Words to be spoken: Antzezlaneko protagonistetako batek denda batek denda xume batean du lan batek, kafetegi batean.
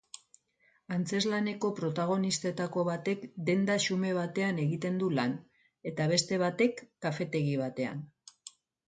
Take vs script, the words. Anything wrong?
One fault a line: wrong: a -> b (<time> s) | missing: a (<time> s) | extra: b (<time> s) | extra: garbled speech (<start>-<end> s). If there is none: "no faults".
missing: batek denda (3.8 s)
extra: egiten (4.6 s)
extra: eta beste (5.9 s)